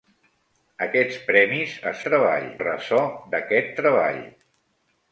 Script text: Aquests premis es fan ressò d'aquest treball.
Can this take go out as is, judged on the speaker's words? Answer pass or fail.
fail